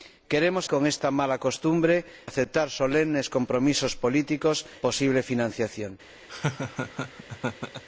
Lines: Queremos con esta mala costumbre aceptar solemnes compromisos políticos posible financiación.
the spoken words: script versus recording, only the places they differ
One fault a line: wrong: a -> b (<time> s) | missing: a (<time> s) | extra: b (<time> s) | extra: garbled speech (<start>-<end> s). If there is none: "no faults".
no faults